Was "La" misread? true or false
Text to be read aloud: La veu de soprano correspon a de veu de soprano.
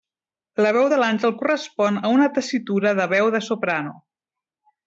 false